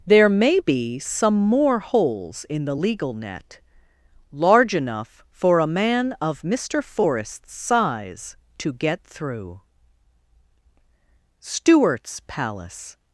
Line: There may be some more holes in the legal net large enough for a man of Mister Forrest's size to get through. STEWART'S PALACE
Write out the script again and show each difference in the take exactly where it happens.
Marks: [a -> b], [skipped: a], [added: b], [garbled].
There may be some more holes in the legal net large enough for a man of Mister Forrest's size to get through. STEWART'S PALACE